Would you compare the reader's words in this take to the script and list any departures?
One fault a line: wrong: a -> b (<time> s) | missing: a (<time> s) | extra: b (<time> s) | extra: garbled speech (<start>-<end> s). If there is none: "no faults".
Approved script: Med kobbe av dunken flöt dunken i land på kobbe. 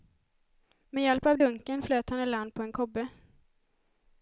wrong: kobbe -> hjälp (1.0 s)
wrong: dunken -> han (2.1 s)
extra: en (2.6 s)